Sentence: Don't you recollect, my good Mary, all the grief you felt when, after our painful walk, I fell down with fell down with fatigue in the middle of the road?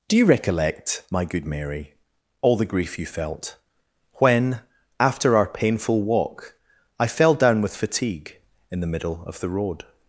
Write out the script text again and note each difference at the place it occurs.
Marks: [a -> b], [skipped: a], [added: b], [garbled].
[Don't -> Do] you recollect, my good Mary, all the grief you felt when, after our painful walk, I fell down with [skipped: fell down with] fatigue in the middle of the road?